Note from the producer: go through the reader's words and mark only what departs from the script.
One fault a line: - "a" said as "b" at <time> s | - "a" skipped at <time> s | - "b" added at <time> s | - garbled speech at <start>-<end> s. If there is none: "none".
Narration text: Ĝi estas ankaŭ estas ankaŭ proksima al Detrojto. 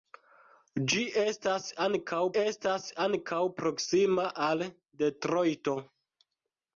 none